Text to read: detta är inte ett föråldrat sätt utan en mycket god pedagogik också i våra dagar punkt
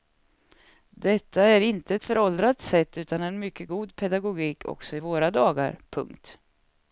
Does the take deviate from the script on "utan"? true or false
false